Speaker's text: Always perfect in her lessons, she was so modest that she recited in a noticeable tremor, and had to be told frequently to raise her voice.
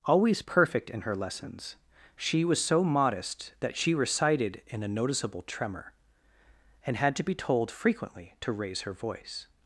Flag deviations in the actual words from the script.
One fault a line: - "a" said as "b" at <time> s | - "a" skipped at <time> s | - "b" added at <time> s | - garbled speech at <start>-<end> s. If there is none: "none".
none